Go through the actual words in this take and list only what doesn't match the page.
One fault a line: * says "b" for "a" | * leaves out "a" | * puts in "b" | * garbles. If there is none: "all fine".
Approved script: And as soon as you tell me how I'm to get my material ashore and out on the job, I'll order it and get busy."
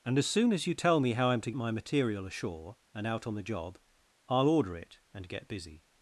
* leaves out "get"